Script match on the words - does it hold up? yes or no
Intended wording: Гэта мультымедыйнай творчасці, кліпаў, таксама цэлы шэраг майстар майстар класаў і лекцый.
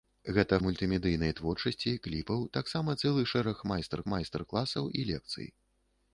yes